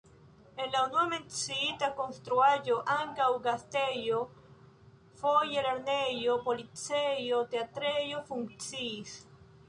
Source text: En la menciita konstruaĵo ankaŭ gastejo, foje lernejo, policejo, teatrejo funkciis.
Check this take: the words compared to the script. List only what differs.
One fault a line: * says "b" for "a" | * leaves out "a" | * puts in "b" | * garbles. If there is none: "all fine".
* puts in "unua"